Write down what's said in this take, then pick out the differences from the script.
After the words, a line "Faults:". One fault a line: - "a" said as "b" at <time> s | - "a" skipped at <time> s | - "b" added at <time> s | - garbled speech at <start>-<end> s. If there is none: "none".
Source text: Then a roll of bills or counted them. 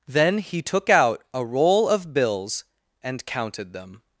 Then he took out a roll of bills and counted them.
Faults:
- "he took out" added at 0.4 s
- "or" said as "and" at 3.0 s